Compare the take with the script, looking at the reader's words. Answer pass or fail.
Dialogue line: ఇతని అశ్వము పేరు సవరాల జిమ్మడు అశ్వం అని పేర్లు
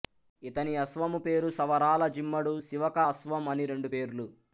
fail